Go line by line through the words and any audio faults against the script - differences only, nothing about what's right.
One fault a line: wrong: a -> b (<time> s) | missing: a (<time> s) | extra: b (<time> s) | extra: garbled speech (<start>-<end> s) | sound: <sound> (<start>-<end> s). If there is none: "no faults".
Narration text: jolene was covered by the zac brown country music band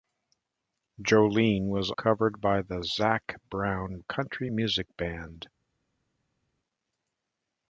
no faults